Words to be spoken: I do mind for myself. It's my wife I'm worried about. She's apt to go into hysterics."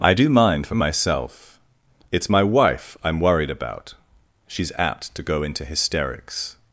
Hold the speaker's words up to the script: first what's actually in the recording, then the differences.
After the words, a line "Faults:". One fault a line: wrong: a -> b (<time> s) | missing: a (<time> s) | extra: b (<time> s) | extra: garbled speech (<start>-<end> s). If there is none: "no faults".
I do mind for myself. It's my wife I'm worried about. She's apt to go into hysterics."
Faults:
no faults